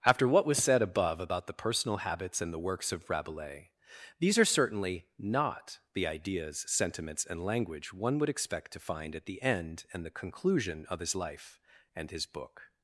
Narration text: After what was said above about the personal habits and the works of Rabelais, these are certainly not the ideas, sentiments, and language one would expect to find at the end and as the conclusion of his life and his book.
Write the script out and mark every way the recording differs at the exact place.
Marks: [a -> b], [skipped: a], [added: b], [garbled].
After what was said above about the personal habits and the works of Rabelais, these are certainly not the ideas, sentiments, and language one would expect to find at the end and [skipped: as] the conclusion of his life and his book.